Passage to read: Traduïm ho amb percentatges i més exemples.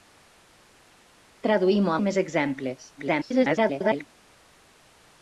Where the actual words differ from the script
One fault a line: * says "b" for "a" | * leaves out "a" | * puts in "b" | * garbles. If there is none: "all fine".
* leaves out "amb percentatges"
* garbles